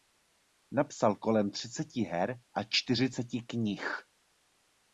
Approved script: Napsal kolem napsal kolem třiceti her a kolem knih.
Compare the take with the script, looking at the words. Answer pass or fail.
fail